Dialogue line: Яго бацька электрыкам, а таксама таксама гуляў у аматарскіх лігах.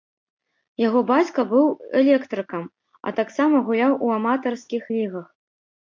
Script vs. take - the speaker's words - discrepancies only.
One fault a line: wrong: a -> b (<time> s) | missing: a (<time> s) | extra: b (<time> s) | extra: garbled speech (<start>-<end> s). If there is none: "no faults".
extra: быў (1.5 s)
missing: таксама (3.5 s)